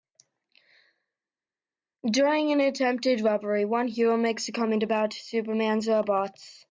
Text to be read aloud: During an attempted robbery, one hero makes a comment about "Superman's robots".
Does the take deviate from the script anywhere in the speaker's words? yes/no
no